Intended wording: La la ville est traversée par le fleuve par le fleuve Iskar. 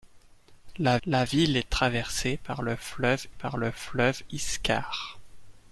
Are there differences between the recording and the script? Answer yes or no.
no